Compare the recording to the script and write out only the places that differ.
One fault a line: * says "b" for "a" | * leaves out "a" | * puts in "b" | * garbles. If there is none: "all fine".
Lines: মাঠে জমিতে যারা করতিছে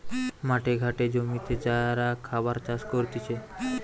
* puts in "ঘাটে"
* puts in "খাবার চাষ"